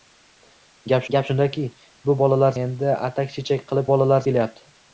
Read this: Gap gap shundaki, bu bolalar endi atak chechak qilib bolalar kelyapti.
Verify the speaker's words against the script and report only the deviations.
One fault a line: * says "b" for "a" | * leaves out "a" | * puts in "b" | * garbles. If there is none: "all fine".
all fine